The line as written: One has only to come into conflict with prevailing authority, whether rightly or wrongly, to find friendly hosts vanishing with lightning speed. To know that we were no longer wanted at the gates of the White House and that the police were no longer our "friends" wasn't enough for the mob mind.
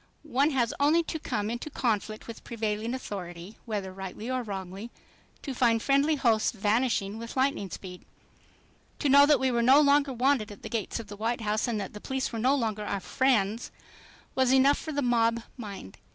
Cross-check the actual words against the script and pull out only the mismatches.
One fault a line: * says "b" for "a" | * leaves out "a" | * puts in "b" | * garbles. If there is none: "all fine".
* says "was" for "wasn't"